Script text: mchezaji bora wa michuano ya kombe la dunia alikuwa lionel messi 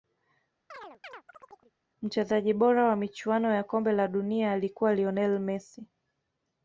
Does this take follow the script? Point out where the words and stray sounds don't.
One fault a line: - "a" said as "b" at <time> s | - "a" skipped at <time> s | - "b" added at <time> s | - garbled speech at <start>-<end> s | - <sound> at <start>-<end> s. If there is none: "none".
- chirp at 0.7-1.7 s